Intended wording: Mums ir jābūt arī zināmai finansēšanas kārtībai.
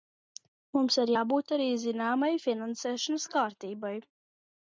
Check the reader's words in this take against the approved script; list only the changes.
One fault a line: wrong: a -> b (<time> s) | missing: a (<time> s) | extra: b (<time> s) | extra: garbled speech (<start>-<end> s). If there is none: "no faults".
no faults